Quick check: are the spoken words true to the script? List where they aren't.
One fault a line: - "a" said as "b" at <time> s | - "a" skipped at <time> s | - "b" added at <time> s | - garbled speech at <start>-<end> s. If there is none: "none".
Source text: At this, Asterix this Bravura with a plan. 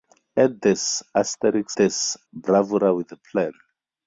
none